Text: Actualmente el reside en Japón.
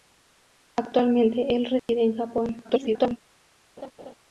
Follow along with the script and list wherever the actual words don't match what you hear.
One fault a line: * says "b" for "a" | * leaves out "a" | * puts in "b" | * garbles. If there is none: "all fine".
* garbles